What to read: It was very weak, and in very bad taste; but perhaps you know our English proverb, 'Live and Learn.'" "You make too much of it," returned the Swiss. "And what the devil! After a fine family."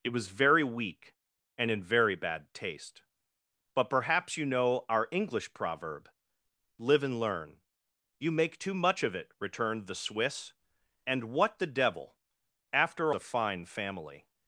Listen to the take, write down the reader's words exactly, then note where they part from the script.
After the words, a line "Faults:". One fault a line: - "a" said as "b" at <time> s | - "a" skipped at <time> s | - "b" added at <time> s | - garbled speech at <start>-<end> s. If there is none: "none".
It was very weak, and in very bad taste; but perhaps you know our English proverb, 'Live and Learn.'" "You make too much of it," returned the Swiss. "And what the devil! After a fine family."
Faults:
none